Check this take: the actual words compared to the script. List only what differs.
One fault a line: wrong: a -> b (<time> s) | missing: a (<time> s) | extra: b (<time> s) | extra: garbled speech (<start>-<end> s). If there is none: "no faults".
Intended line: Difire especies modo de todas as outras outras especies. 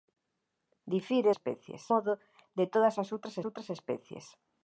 no faults